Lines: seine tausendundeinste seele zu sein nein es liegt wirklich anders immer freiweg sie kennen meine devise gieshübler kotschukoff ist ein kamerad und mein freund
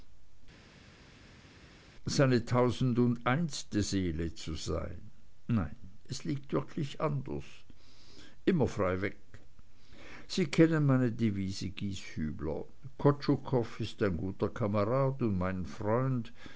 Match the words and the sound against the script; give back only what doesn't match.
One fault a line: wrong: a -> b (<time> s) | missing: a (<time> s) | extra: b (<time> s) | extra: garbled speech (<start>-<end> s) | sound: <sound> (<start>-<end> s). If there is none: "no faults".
extra: guter (14.2 s)